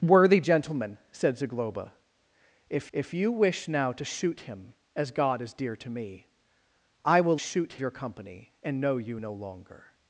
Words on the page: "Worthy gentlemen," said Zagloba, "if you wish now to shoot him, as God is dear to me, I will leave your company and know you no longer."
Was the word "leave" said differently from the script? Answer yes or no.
yes